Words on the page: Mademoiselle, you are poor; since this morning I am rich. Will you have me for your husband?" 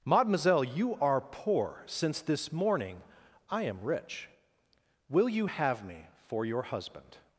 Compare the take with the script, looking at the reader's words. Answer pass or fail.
pass